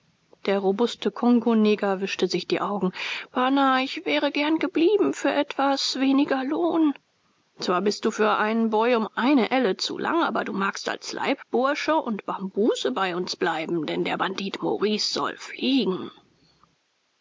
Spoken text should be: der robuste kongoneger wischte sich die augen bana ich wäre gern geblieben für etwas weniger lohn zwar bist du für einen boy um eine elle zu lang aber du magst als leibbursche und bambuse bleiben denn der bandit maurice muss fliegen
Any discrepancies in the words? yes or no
yes